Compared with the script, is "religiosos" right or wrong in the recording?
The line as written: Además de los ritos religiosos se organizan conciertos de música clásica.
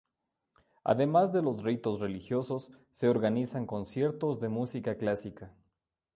right